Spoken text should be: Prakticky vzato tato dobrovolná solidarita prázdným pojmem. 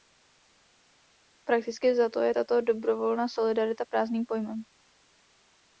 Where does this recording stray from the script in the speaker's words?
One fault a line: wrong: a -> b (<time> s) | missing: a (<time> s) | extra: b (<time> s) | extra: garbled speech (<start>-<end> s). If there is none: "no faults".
extra: je (2.2 s)